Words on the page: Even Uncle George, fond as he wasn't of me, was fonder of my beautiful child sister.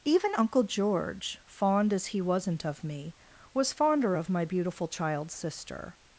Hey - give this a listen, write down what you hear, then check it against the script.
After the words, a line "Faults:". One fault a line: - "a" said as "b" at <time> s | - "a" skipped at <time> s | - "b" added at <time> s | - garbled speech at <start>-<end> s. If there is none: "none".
Even Uncle George, fond as he wasn't of me, was fonder of my beautiful child sister.
Faults:
none